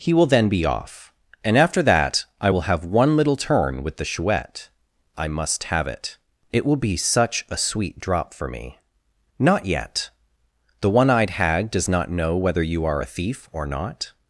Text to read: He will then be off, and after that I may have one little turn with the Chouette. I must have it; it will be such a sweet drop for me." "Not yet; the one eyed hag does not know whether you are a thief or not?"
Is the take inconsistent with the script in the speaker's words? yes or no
yes